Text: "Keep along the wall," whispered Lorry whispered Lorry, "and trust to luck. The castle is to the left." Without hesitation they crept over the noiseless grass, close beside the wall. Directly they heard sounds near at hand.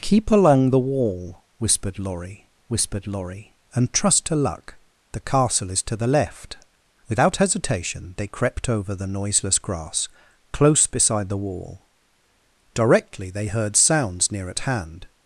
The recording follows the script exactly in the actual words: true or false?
true